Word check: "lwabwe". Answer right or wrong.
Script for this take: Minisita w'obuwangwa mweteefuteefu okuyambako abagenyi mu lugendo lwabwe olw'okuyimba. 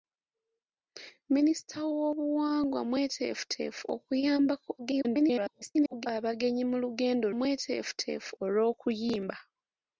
wrong